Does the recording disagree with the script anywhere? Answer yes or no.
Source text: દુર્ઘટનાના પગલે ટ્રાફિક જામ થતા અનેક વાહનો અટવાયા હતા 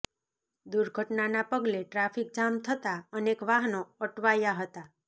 no